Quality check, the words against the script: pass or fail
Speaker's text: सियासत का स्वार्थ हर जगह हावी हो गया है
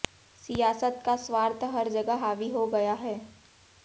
pass